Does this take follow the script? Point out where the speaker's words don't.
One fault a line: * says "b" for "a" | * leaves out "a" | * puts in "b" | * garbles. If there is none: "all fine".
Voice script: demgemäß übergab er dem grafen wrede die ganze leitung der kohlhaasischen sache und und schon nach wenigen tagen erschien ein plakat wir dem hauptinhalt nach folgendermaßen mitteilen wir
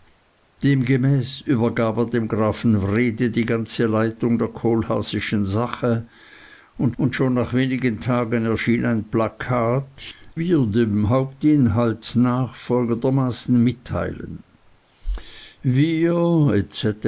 all fine